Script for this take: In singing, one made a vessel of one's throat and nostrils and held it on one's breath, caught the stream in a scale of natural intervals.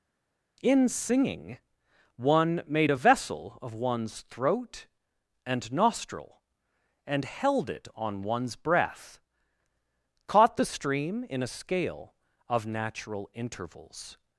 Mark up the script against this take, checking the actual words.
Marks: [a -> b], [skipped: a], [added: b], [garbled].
In singing, one made a vessel of one's throat and [nostrils -> nostril] and held it on one's breath, caught the stream in a scale of natural intervals.